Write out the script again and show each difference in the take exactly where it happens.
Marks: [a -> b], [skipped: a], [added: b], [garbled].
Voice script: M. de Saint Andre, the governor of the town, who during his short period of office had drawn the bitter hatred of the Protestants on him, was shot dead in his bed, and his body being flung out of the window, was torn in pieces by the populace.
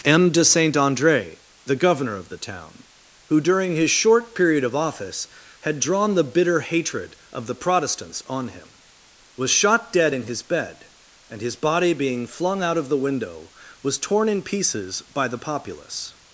M. de Saint Andre, the governor of the town, who during his short period of office had drawn the bitter hatred of the Protestants on him, was shot dead in his bed, and his body being flung out of the window, was torn in pieces by the populace.